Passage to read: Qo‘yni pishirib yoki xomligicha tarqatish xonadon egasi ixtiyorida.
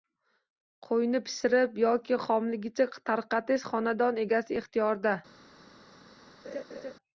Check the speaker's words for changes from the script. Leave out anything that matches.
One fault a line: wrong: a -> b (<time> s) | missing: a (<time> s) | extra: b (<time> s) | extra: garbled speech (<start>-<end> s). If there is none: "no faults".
no faults